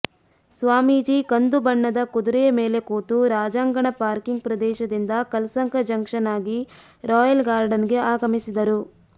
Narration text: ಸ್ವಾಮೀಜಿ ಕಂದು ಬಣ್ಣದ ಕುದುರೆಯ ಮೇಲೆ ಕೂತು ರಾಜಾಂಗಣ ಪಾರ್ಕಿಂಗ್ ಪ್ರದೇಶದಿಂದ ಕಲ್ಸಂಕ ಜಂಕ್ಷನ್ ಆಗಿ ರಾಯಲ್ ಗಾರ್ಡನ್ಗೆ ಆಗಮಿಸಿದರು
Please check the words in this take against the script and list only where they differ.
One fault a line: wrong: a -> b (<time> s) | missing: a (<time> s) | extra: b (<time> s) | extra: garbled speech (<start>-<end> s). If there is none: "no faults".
no faults